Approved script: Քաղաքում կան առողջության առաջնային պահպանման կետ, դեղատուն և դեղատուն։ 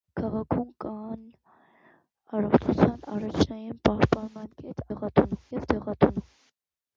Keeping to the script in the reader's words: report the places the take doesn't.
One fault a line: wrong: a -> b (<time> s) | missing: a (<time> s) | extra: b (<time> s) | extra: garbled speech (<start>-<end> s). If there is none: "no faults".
no faults